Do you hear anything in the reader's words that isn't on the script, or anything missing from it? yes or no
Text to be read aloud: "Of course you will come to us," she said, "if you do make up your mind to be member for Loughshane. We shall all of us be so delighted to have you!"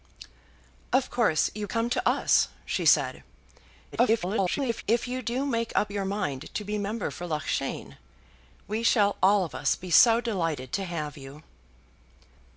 yes